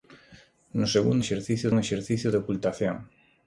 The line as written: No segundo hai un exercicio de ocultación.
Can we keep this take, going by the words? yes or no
no